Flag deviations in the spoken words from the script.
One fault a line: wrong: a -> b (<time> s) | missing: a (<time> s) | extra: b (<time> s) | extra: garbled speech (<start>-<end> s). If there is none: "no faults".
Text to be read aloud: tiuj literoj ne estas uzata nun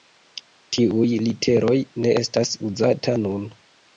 no faults